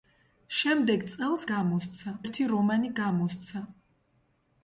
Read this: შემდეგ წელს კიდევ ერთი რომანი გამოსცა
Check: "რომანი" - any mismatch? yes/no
no